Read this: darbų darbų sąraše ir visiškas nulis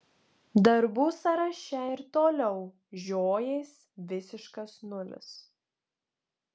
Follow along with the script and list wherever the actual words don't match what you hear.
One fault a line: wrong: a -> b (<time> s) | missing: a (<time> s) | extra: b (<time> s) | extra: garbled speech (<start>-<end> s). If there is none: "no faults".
missing: darbų (1.0 s)
extra: toliau žiojės (2.2 s)